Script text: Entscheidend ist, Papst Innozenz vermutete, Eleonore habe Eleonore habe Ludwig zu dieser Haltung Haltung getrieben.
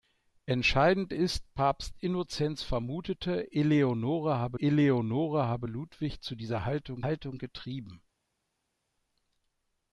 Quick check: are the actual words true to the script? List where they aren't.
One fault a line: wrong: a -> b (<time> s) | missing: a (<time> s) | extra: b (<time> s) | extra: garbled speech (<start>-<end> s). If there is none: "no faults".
no faults